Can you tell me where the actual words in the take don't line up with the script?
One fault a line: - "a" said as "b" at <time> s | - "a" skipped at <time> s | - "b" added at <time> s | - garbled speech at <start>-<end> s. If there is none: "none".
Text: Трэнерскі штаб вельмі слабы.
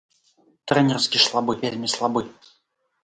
- "штаб" said as "слабы" at 1.3 s